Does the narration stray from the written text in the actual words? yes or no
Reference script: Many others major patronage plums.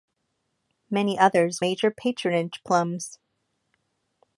no